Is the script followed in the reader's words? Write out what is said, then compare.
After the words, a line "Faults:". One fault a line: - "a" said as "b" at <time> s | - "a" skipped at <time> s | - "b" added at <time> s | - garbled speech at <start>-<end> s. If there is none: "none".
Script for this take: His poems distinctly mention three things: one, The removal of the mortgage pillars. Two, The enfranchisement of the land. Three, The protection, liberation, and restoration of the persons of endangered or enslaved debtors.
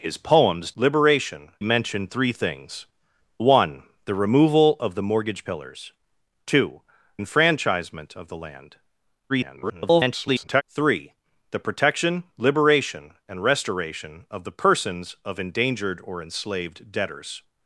His poems liberation mention three things: one, The removal of the mortgage pillars. Two, Enfranchisement of the land. [garbled] Three, The protection, liberation, and restoration of the persons of endangered or enslaved debtors.
Faults:
- "distinctly" said as "liberation" at 0.8 s
- "The" skipped at 6.8 s
- garbled speech at 9.3-10.6 s